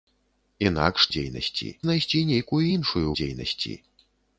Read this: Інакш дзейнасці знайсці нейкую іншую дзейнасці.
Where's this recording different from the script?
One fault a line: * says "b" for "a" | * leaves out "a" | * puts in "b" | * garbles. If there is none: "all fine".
all fine